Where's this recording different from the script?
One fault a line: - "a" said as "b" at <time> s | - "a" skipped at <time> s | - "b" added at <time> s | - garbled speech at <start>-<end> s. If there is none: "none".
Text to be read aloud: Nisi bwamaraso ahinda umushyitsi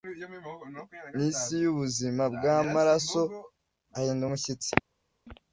- "yubuzima" added at 1.6 s